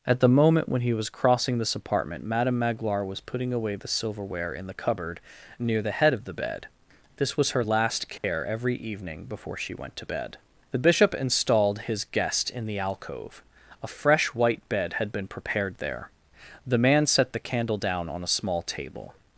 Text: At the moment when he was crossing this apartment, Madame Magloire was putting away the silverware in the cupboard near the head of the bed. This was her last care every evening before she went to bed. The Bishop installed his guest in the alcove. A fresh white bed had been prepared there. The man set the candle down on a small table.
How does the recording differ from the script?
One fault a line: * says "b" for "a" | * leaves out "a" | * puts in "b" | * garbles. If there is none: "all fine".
all fine